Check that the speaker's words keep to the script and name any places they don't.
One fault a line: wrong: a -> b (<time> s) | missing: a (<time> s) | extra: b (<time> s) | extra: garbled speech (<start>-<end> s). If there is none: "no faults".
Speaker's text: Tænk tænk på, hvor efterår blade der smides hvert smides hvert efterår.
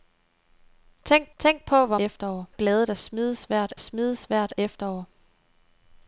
no faults